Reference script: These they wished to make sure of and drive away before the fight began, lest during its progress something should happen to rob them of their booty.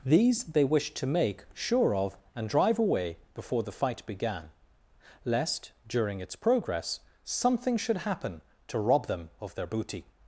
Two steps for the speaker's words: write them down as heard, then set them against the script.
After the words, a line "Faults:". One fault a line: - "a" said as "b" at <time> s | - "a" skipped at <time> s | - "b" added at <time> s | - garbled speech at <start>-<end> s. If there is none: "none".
These they wished to make sure of and drive away before the fight began, lest during its progress something should happen to rob them of their booty.
Faults:
none